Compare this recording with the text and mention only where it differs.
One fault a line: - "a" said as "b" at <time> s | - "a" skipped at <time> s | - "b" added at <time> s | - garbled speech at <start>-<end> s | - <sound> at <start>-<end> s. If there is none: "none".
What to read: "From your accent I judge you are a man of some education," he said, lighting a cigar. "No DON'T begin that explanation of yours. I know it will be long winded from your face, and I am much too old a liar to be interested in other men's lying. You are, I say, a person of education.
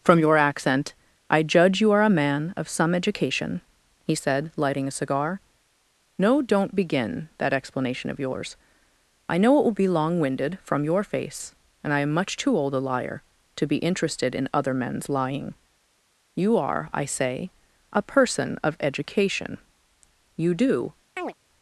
- "You do" added at 20.4 s
- chirp at 21.2-21.3 s